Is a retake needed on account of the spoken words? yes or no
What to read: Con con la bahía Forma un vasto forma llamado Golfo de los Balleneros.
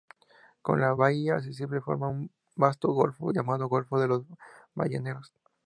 yes